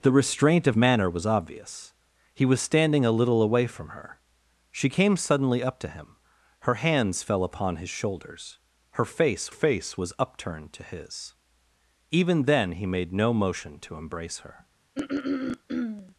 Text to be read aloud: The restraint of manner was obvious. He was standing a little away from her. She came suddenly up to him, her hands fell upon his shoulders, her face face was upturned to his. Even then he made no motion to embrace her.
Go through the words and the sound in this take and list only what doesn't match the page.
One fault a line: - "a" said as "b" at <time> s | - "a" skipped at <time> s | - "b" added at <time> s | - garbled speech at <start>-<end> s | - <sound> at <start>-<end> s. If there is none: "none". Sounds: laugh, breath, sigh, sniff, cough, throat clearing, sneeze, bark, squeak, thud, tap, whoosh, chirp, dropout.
- throat clearing at 15.0-16.1 s